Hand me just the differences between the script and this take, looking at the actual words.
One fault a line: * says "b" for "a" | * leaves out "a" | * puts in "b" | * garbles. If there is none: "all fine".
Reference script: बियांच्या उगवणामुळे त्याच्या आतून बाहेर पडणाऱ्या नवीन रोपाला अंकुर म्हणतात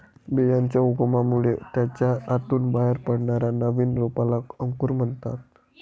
all fine